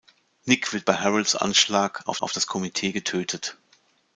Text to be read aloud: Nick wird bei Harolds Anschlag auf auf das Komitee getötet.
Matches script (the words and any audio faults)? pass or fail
pass